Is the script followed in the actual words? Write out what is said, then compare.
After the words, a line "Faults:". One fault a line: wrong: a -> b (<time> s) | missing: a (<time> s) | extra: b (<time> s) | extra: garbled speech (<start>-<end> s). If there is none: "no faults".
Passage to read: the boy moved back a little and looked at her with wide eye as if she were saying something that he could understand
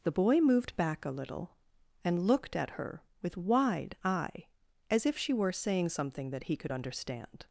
the boy moved back a little and looked at her with wide eye as if she were saying something that he could understand
Faults:
no faults